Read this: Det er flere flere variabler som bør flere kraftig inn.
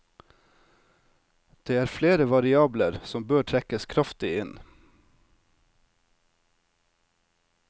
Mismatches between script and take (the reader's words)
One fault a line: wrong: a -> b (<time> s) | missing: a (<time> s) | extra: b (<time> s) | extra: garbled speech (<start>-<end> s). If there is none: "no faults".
missing: flere (2.2 s)
wrong: flere -> trekkes (3.5 s)